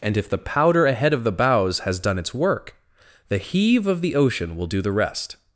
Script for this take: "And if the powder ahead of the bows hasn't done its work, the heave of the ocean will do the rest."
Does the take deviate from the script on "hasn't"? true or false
true